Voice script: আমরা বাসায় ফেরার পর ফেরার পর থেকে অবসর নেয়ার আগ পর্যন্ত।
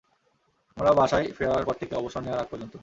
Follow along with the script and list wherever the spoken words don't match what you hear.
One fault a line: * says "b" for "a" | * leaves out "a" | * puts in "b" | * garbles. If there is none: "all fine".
* leaves out "ফেরার পর"